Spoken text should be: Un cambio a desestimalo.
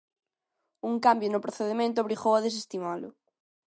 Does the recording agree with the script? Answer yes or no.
no